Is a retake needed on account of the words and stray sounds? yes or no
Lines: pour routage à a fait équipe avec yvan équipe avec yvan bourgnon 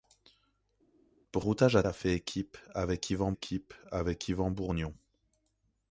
no